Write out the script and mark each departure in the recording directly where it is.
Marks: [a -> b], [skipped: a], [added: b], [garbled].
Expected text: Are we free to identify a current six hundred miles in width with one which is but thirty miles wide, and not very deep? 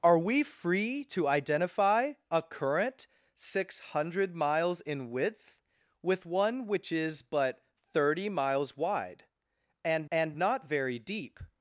Are we free to identify a current six hundred miles in width with one which is but thirty miles wide, and [added: and] not very deep?